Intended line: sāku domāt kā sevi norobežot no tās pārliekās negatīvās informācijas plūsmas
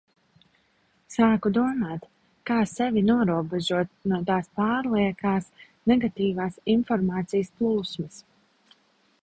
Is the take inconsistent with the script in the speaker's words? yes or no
no